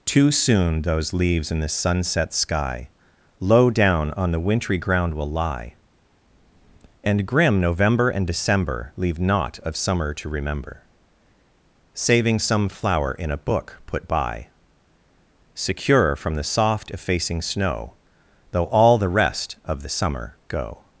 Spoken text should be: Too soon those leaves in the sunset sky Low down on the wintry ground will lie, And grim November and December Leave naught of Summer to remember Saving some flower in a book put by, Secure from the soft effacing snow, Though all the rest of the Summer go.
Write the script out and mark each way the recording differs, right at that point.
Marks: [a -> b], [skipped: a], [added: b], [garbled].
Too soon those leaves in the sunset sky Low down on the wintry ground will lie, And grim November and December Leave naught of Summer to remember Saving some flower in a book put by, Secure from the soft effacing snow, Though all the rest of the Summer go.